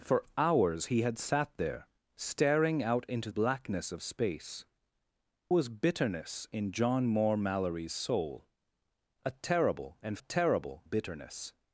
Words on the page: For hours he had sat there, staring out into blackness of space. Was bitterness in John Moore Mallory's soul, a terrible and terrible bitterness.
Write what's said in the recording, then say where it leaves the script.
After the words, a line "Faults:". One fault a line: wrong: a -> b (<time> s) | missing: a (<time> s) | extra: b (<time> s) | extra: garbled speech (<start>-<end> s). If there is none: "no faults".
For hours he had sat there, staring out into blackness of space. Was bitterness in John Moore Mallory's soul, a terrible and terrible bitterness.
Faults:
no faults